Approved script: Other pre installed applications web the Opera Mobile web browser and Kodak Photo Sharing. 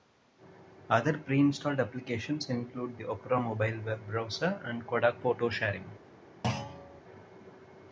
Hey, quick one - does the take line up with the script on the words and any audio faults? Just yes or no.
no